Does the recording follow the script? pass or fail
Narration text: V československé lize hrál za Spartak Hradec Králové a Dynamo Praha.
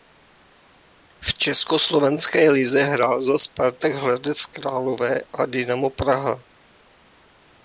pass